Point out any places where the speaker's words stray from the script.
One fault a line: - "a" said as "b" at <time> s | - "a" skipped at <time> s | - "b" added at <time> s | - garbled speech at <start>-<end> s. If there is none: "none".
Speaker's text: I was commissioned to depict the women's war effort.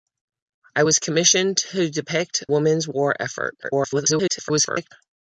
- "the" skipped at 2.4 s
- garbled speech at 3.6-4.9 s